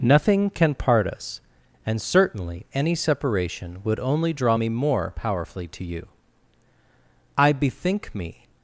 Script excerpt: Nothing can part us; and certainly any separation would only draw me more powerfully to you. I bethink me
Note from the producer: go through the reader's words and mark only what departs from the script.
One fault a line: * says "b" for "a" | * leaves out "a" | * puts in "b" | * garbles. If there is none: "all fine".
all fine